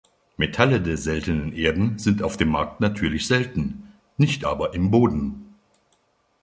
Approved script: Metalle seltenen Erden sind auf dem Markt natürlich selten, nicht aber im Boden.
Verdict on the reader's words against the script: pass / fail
fail